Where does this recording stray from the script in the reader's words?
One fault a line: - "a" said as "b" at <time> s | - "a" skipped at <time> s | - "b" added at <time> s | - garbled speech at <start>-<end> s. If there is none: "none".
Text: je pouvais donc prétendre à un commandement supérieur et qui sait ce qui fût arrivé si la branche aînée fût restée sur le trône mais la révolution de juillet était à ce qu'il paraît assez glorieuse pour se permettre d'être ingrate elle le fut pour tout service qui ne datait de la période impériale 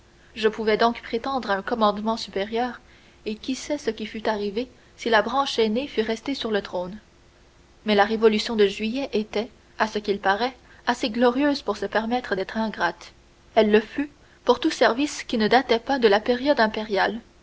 - "pas" added at 15.8 s